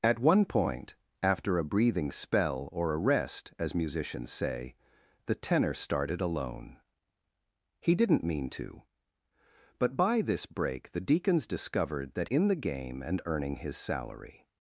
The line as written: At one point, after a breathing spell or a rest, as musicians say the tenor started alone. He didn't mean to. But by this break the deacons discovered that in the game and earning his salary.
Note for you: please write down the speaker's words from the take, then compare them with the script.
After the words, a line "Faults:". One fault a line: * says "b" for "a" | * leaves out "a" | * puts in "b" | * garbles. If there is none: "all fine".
At one point, after a breathing spell or a rest, as musicians say the tenor started alone. He didn't mean to. But by this break the deacons discovered that in the game and earning his salary.
Faults:
all fine